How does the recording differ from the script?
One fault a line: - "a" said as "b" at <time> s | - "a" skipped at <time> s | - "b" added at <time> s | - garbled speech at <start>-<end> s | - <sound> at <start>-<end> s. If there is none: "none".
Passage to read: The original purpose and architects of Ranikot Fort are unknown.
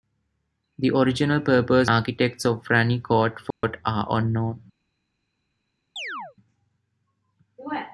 - "and" skipped at 1.9 s
- dropout at 3.5-3.6 s
- chirp at 6.0-6.4 s